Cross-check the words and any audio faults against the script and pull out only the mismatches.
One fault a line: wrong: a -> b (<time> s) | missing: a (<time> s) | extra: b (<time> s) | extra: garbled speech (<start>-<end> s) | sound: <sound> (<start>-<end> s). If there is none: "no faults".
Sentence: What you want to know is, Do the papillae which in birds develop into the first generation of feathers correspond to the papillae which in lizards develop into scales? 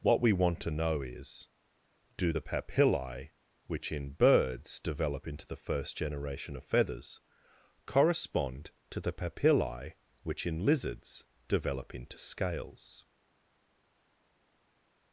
wrong: you -> we (0.2 s)